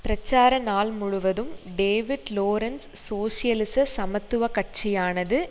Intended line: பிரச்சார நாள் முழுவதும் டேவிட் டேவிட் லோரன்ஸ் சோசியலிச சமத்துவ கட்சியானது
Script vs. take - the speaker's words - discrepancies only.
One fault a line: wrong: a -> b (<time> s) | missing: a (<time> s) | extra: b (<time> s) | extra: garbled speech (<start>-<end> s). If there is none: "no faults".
missing: டேவிட் (2.3 s)